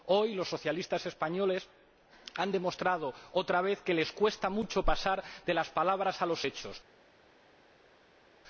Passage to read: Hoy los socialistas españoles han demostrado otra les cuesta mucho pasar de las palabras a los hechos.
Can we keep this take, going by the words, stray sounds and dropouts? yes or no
no